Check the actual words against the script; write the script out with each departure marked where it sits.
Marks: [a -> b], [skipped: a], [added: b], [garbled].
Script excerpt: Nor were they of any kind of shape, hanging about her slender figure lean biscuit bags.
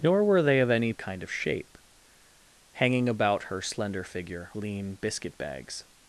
Nor were they of any kind of shape, hanging about her slender figure lean biscuit bags.